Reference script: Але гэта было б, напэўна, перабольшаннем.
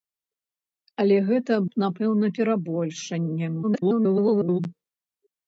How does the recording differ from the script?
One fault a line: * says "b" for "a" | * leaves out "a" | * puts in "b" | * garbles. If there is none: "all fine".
* leaves out "было"
* garbles